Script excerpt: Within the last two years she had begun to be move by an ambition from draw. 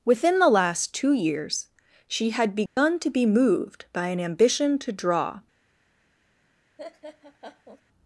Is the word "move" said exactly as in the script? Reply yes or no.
no